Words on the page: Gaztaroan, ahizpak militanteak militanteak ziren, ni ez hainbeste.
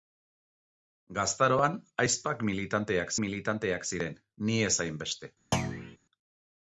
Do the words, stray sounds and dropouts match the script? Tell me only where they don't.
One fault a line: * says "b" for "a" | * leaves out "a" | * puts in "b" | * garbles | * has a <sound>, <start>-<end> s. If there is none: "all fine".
* has a thud, 5.5-6.0 s